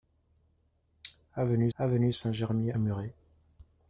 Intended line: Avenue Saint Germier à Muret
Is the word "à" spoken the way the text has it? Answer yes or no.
no